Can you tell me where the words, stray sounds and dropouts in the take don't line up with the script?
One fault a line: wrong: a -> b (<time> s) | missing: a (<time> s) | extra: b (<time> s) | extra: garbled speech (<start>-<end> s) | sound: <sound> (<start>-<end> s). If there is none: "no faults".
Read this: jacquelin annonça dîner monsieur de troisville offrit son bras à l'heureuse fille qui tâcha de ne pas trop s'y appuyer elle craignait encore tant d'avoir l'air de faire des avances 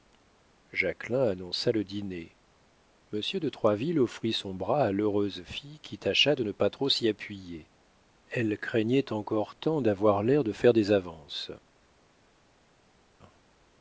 extra: le (1.7 s)